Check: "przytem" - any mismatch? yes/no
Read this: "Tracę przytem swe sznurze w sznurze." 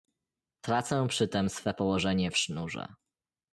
no